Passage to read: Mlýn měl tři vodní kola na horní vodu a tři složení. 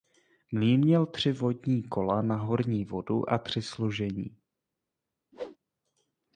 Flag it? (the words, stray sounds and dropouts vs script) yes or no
yes